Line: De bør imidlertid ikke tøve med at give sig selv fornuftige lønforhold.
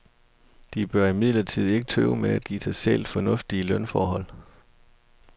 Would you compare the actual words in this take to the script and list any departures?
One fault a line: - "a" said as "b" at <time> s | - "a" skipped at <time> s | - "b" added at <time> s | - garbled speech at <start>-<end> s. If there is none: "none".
none